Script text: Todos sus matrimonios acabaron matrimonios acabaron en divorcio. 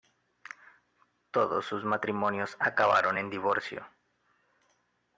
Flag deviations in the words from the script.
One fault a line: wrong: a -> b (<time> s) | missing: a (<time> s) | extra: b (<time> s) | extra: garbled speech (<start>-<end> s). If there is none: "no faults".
missing: matrimonios acabaron (3.2 s)